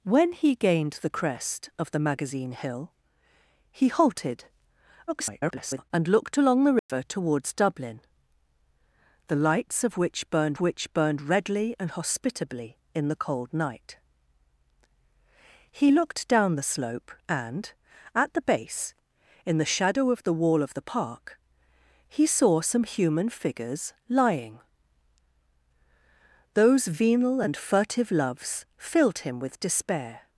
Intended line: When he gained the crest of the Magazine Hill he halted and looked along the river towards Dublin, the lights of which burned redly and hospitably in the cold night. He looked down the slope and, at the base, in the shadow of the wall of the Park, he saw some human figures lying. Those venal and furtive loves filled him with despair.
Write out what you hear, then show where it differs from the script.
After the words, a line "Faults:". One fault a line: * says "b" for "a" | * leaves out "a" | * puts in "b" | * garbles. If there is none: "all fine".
When he gained the crest of the Magazine Hill he halted [garbled] and looked along the river towards Dublin, the lights of which burned which burned redly and hospitably in the cold night. He looked down the slope and, at the base, in the shadow of the wall of the Park, he saw some human figures lying. Those venal and furtive loves filled him with despair.
Faults:
* garbles
* puts in "which burned"